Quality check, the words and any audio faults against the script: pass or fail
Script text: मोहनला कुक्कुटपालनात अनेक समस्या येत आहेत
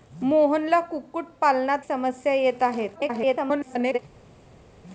fail